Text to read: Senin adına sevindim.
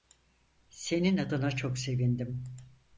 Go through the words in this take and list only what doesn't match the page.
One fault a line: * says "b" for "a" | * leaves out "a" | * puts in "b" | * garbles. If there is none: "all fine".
* puts in "çok"